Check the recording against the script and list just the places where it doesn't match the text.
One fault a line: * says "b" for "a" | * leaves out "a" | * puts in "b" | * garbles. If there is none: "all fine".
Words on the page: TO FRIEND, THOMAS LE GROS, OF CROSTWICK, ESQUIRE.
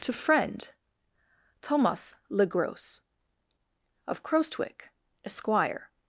all fine